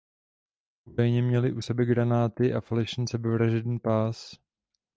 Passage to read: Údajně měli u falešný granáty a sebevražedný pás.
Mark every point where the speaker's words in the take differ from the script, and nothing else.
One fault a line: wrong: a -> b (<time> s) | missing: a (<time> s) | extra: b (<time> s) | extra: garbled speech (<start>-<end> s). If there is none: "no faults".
wrong: falešný -> sebe (1.6 s)
extra: falešný (2.6 s)